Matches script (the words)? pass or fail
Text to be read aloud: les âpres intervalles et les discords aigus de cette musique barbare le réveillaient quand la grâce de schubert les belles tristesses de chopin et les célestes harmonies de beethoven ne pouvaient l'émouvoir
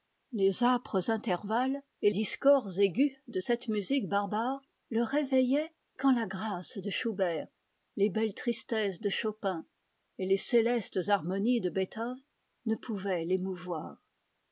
fail